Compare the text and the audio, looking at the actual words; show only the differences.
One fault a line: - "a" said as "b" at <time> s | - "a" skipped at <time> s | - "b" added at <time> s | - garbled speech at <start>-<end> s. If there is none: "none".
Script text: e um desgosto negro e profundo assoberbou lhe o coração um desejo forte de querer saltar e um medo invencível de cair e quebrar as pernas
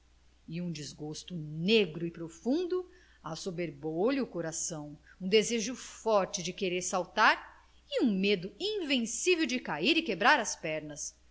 none